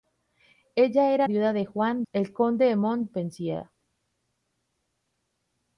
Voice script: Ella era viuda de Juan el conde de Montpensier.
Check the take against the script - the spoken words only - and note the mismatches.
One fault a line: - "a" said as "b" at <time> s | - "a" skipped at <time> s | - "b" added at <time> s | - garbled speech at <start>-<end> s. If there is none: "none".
none